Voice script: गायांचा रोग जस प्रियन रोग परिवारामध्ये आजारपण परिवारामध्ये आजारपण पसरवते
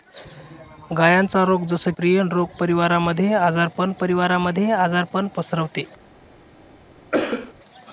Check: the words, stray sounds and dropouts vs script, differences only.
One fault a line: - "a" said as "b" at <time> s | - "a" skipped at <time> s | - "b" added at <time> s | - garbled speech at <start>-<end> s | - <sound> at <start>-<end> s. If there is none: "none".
- cough at 7.1-7.5 s